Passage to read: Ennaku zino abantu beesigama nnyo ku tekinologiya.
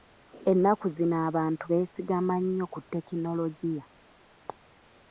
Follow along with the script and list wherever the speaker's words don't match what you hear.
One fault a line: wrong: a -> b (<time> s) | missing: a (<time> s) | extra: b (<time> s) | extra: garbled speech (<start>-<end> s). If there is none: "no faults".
no faults